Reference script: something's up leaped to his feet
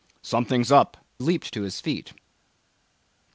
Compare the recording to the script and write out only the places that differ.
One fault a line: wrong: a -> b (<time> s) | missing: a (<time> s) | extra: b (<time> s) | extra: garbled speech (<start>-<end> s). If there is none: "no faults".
no faults